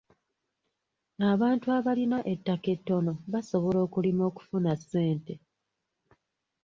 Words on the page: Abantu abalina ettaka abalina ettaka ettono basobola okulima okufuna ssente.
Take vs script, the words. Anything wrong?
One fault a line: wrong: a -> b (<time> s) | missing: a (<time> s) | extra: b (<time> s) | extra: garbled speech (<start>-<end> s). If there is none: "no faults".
missing: abalina ettaka (2.7 s)